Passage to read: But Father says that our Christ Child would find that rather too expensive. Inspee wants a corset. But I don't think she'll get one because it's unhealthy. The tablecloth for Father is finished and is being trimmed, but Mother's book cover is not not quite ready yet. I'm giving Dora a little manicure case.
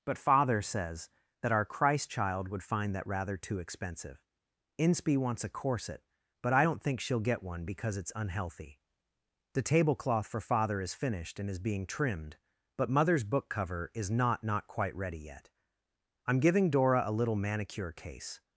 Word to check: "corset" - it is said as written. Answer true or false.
true